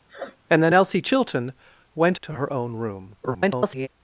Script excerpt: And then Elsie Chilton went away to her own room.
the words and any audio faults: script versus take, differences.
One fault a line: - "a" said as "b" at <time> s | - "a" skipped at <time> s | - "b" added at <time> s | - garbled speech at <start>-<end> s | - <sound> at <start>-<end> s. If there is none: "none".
- sniff at 0.1-0.4 s
- "away" skipped at 2.2 s
- garbled speech at 3.2-3.9 s